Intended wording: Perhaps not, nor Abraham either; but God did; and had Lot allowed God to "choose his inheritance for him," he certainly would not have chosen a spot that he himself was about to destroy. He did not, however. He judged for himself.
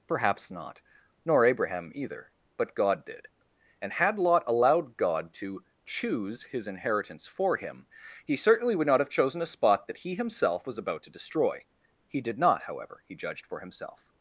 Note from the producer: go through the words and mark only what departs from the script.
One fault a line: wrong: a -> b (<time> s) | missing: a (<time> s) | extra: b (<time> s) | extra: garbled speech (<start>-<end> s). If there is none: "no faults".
no faults